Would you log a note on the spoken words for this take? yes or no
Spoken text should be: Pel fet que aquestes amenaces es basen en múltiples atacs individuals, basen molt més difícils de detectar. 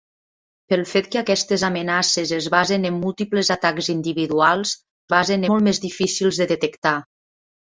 no